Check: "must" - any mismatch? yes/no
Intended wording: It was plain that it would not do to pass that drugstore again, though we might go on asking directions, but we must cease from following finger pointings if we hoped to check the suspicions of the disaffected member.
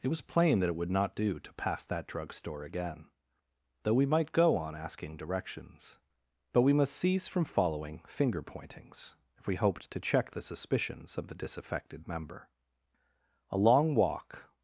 no